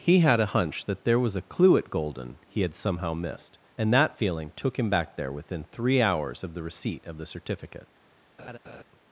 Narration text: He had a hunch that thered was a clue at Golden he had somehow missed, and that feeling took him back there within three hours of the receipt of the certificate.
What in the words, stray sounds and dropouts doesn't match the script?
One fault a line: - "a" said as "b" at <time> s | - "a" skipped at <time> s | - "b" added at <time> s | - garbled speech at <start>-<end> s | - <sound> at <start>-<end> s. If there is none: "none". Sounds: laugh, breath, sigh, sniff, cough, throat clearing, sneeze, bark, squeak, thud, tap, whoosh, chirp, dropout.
- "thered" said as "there" at 1.0 s
- laugh at 8.4-8.8 s